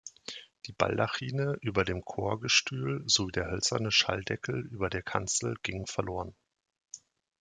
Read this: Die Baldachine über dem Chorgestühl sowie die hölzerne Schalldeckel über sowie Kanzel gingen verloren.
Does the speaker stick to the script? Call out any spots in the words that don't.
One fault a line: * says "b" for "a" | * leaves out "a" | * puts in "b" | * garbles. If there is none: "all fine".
* says "der" for "die"
* says "der" for "sowie"